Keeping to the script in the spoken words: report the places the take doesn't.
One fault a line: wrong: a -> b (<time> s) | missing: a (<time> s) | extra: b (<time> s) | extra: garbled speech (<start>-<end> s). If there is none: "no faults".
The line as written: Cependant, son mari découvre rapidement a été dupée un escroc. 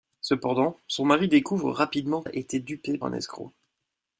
no faults